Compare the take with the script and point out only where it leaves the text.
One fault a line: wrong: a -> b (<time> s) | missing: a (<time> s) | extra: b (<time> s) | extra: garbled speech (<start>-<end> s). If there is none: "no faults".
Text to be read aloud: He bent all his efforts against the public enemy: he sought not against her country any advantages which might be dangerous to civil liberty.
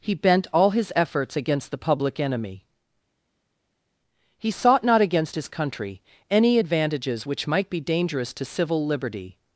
wrong: her -> his (5.3 s)